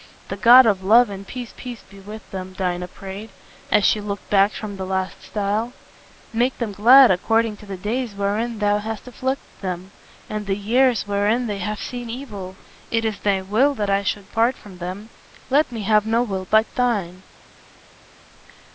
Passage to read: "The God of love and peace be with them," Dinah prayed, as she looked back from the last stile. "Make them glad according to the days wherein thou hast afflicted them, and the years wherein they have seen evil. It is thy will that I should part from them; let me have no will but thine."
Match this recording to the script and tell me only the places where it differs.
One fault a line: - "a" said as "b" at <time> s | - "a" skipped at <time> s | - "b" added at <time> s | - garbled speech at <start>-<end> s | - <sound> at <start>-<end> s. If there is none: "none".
- "peace" added at 1.6 s